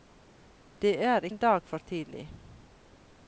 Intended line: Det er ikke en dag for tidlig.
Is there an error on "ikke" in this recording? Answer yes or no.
yes